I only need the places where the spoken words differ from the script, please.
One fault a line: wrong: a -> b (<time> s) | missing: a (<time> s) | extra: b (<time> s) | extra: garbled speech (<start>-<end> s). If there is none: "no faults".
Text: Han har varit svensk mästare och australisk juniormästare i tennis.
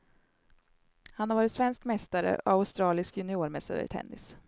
no faults